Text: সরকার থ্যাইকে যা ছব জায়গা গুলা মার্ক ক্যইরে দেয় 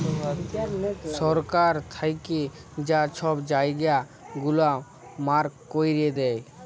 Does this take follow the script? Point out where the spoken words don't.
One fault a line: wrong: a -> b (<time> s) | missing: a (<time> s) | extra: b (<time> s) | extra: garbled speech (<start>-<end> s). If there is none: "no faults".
no faults